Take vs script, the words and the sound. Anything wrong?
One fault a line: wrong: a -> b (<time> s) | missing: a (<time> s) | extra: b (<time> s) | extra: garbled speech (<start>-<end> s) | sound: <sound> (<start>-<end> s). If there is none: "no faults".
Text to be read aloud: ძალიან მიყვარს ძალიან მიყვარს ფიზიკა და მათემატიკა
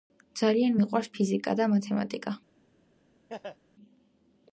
missing: ძალიან მიყვარს (1.1 s)
sound: laugh (3.3-3.6 s)